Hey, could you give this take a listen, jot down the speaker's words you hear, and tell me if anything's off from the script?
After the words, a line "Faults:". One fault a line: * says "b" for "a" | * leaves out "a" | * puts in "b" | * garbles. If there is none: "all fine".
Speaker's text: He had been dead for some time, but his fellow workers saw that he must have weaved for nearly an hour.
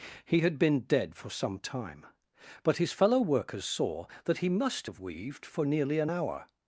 He had been dead for some time, but his fellow workers saw that he must have weaved for nearly an hour.
Faults:
all fine